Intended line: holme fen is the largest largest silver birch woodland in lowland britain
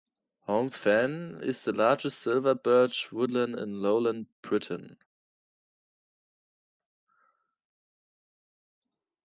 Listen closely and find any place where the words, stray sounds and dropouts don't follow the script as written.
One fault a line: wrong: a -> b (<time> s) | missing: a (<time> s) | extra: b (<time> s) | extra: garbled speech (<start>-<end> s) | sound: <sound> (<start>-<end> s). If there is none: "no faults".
missing: largest (2.2 s)